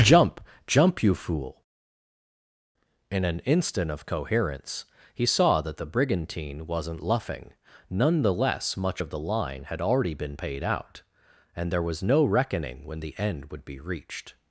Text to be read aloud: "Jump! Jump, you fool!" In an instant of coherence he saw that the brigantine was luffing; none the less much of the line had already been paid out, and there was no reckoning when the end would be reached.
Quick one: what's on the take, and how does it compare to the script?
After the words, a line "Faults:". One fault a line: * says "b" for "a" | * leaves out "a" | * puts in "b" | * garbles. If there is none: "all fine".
"Jump! Jump, you fool!" In an instant of coherence he saw that the brigantine wasn't luffing; none the less much of the line had already been paid out, and there was no reckoning when the end would be reached.
Faults:
* says "wasn't" for "was"